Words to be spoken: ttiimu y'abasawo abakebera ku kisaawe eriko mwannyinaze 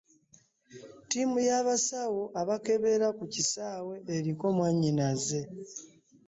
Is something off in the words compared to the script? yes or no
no